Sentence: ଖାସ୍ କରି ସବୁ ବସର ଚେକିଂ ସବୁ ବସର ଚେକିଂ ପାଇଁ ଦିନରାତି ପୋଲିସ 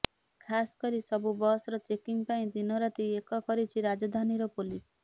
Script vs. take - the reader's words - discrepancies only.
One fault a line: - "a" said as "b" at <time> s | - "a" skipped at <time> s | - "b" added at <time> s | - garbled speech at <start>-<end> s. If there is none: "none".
- "ସବୁ ବସର ଚେକିଂ ପାଇଁ ଦିନରାତି" said as "ପାଇଁ ଦିନରାତି ଏକ କରିଛି ରାଜଧାନୀର" at 2.3 s